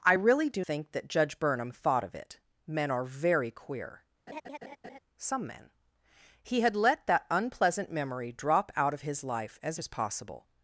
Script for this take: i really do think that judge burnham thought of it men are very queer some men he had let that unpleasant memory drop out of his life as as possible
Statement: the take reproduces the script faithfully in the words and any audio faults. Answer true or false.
false